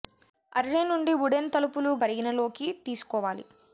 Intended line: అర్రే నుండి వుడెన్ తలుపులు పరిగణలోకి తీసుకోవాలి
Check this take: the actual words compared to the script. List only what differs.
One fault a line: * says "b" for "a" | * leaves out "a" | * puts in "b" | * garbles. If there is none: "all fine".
all fine